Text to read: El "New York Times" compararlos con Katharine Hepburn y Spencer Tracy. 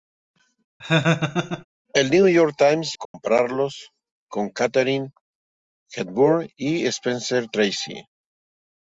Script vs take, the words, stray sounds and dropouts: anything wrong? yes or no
yes